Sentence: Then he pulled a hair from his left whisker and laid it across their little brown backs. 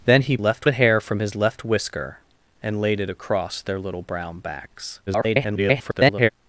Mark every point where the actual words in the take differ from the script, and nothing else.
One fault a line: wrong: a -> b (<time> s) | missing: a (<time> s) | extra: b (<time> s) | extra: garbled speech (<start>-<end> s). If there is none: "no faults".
wrong: pulled -> left (0.4 s)
extra: garbled speech (5.1-6.3 s)